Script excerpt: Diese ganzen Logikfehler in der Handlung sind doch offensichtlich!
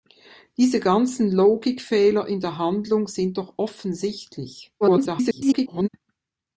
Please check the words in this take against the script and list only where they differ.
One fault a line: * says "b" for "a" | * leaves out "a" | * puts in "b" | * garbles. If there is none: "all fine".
* garbles